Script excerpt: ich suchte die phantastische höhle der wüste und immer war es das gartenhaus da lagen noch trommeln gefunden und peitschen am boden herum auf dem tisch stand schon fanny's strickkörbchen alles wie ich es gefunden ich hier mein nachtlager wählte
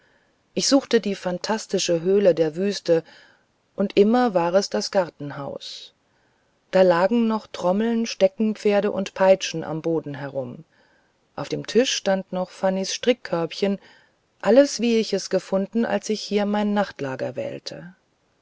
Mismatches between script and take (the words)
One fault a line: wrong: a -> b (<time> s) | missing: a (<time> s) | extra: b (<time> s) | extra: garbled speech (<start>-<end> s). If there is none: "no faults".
wrong: gefunden -> steckenpferde (8.1 s)
wrong: schon -> noch (12.3 s)
extra: als (15.8 s)